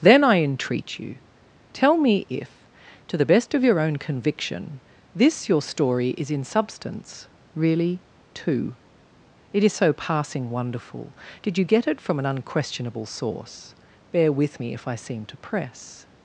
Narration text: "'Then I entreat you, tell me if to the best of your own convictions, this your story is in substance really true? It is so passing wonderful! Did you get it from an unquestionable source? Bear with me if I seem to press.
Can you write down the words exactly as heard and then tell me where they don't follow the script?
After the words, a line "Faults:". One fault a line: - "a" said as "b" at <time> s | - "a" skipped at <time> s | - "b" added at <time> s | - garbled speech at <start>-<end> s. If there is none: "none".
"'Then I entreat you, tell me if to the best of your own conviction, this your story is in substance really two? It is so passing wonderful! Did you get it from an unquestionable source? Bear with me if I seem to press.
Faults:
- "convictions" said as "conviction" at 4.0 s
- "true" said as "two" at 8.3 s